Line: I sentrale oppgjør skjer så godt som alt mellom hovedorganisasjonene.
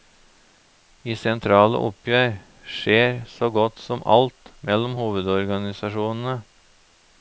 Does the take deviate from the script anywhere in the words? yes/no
no